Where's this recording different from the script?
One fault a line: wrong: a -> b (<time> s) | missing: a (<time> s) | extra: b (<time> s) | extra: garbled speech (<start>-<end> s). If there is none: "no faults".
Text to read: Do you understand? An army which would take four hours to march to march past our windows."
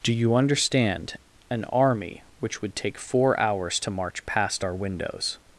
missing: to march (4.2 s)